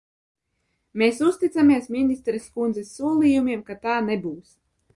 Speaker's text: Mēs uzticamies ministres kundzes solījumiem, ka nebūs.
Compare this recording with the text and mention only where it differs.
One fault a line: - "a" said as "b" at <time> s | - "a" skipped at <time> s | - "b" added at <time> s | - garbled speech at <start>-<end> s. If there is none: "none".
- "tā" added at 3.9 s